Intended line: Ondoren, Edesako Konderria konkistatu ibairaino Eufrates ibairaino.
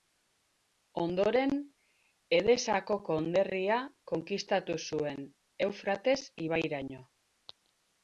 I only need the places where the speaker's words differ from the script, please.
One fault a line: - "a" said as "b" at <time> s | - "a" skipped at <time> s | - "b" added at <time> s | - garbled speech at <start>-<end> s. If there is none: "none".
- "ibairaino" said as "zuen" at 4.9 s